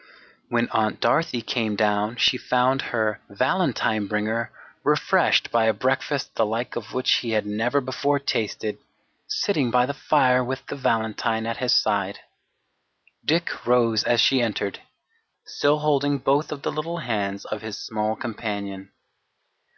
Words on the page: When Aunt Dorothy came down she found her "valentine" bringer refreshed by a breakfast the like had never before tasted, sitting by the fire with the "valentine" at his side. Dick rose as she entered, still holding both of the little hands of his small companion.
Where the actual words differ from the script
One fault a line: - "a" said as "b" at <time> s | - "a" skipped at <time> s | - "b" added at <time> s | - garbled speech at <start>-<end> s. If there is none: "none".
- "of which he" added at 6.8 s